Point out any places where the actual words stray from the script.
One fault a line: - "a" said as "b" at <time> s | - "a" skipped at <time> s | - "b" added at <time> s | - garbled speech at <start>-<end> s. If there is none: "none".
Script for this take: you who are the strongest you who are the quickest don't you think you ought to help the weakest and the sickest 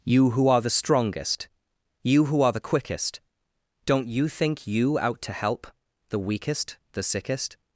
- "ought" said as "out" at 5.0 s
- "and" skipped at 6.8 s